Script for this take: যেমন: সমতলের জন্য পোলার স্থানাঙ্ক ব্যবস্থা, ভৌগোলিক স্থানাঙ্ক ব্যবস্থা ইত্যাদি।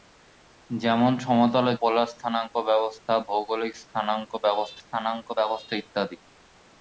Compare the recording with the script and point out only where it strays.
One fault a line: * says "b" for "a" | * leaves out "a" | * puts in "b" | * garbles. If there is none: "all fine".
* leaves out "জন্য"
* puts in "স্থানাঙ্ক ব্যবস্থা"